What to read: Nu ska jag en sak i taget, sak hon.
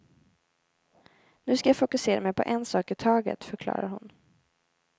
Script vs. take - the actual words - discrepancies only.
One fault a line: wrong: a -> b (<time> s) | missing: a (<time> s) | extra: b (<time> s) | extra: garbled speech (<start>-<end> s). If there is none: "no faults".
extra: fokusera mig på (1.8 s)
wrong: sak -> förklarar (3.4 s)